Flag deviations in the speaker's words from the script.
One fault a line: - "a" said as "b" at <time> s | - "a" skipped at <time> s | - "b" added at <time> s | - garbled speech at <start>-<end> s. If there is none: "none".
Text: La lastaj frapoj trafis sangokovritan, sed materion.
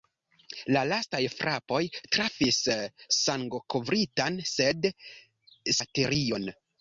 none